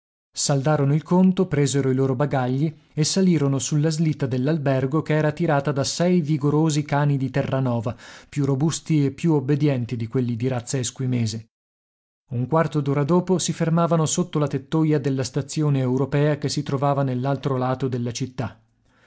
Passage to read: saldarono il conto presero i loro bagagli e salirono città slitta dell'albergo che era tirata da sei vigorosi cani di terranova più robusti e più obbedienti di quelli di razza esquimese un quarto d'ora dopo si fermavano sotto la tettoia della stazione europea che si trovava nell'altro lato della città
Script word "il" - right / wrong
right